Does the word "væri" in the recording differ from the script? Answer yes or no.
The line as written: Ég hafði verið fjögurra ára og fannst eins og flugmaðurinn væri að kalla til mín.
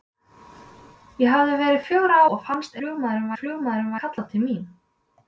yes